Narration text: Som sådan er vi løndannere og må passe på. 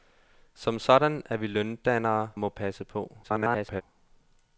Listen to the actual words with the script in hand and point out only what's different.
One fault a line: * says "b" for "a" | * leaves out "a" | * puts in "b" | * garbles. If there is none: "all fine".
* leaves out "og"
* garbles